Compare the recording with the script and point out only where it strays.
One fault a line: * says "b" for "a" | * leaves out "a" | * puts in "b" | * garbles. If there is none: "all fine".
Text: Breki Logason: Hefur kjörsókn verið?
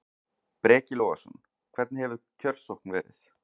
* puts in "Hvernig"